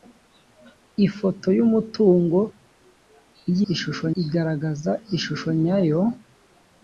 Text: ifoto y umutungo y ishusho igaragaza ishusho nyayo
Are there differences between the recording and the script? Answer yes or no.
no